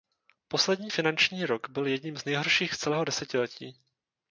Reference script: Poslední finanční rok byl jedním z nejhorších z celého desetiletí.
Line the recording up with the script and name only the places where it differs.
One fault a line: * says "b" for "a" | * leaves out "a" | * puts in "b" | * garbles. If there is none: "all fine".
all fine